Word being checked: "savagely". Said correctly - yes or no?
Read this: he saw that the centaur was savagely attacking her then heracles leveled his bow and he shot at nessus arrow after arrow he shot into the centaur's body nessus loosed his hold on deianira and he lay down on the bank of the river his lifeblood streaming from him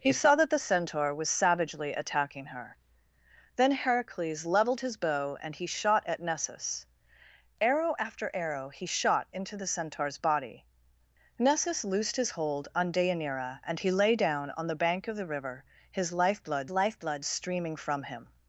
yes